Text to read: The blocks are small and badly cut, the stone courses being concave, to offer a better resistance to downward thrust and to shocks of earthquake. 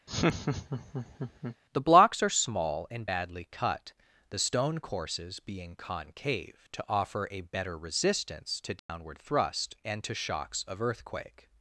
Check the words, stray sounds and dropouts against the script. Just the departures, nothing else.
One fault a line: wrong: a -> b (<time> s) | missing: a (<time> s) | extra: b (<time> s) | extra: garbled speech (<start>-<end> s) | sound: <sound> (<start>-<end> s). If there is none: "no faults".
sound: laugh (0.1-1.6 s)
sound: dropout (8.8-8.9 s)